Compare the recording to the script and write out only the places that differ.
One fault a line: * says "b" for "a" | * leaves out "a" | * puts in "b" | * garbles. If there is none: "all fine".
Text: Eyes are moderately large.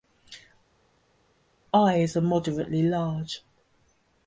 all fine